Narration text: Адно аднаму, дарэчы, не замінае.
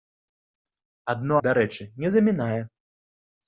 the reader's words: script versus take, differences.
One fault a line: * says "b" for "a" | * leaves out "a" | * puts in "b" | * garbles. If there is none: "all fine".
* leaves out "аднаму"